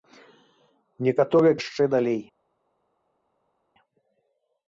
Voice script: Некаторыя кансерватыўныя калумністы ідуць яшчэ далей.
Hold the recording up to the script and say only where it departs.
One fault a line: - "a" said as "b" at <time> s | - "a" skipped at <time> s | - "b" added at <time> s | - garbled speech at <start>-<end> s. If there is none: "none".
- "кансерватыўныя калумністы ідуць" skipped at 1.6 s